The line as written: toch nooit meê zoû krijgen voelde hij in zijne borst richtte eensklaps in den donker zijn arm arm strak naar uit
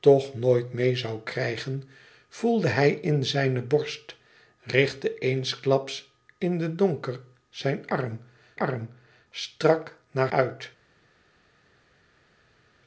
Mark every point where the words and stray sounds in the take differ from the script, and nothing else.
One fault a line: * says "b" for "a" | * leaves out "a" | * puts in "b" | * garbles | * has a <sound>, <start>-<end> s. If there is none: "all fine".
all fine